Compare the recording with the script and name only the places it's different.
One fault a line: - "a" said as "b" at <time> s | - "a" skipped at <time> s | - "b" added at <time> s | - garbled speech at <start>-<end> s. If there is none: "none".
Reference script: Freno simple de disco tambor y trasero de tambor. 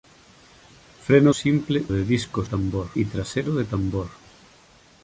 none